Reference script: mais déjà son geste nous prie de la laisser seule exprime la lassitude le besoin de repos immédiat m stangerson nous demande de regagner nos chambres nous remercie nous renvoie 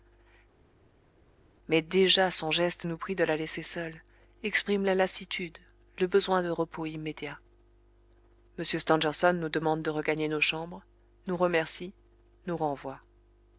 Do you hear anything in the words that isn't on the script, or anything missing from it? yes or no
no